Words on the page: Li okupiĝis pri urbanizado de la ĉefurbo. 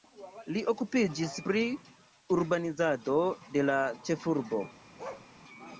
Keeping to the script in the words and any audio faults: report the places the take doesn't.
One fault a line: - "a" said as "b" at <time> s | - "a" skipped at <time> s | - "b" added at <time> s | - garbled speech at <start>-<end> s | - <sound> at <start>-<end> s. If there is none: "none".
- bark at 5.0-5.3 s